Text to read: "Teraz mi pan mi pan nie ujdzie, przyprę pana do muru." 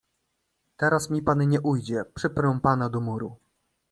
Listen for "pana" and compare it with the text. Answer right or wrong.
right